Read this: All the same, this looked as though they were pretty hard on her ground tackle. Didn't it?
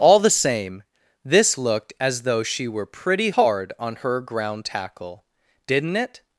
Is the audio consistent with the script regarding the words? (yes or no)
no